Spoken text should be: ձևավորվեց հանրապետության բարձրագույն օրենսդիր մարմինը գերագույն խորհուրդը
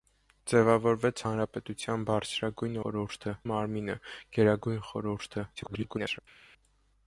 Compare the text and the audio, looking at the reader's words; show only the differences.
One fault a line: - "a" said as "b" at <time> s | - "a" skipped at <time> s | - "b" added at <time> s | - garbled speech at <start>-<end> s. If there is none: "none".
- "օրենսդիր" said as "խորհուրդը" at 2.8 s
- garbled speech at 5.6-6.2 s